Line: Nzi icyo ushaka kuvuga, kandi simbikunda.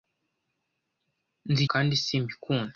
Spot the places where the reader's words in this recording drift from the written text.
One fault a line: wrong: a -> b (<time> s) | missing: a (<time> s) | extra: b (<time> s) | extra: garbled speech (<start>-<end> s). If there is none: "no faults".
missing: icyo ushaka kuvuga (1.6 s)